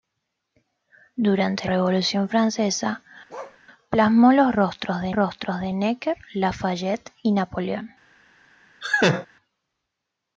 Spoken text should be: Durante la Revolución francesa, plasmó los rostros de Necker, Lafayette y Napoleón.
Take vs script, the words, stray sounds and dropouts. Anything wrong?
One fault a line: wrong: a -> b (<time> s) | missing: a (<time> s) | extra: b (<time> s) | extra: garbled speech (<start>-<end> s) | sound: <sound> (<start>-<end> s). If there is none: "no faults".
missing: la (1.7 s)
sound: bark (3.3-3.6 s)
extra: rostros de (5.1 s)
sound: laugh (8.8-9.3 s)